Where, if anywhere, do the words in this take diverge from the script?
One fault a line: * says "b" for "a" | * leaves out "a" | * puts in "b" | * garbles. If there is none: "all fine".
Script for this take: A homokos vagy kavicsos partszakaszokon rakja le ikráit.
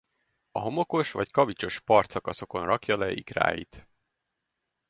all fine